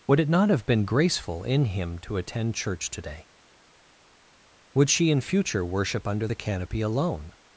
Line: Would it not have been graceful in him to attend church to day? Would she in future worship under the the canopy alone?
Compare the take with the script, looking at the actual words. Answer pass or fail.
fail